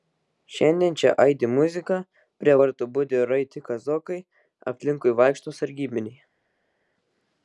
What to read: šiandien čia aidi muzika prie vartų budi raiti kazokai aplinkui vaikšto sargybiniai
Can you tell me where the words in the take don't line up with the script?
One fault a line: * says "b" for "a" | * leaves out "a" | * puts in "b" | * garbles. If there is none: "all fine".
all fine